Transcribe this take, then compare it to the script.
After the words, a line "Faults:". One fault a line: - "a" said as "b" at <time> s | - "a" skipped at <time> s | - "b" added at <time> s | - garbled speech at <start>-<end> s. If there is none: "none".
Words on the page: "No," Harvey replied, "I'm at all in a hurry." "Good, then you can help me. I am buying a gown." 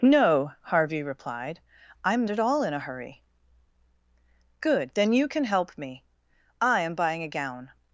"No," Harvey replied, "I'm at all in a hurry." "Good, then you can help me. I am buying a gown."
Faults:
none